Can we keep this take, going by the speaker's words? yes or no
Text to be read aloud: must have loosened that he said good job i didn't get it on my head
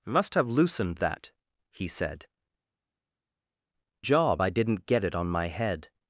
no